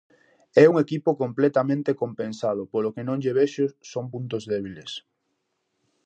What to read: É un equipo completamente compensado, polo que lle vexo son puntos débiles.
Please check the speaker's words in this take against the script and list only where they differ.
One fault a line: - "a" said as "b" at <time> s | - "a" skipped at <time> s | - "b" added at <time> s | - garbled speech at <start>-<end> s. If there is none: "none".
- "non" added at 3.1 s